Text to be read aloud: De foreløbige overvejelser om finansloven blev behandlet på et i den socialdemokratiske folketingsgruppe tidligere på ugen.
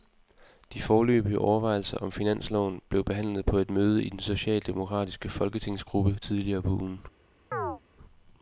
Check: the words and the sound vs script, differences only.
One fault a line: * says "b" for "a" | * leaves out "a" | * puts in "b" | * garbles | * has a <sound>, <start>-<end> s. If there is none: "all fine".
* puts in "møde"
* has a chirp, 7.5-7.8 s